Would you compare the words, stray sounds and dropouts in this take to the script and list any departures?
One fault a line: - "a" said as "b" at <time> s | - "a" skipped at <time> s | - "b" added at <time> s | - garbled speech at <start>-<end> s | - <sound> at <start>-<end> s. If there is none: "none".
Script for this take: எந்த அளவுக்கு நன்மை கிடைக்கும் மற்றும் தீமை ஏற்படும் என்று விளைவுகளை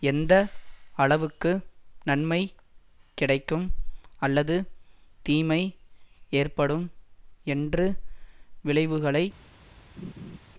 - "மற்றும்" said as "அல்லது" at 4.2 s
- laugh at 10.0-10.4 s